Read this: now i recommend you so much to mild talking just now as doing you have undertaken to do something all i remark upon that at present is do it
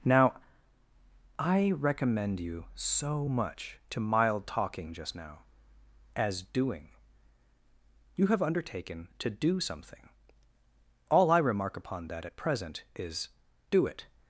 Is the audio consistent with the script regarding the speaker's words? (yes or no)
yes